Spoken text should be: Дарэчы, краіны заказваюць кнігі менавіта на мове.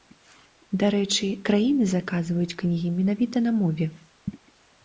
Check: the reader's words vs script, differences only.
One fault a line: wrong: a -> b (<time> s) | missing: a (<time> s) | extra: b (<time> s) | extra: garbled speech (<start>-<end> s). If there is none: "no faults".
no faults